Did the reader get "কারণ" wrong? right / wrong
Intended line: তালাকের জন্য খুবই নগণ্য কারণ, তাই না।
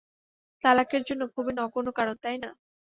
right